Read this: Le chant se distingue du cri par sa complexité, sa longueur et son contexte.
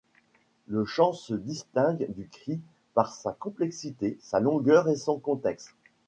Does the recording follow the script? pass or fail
pass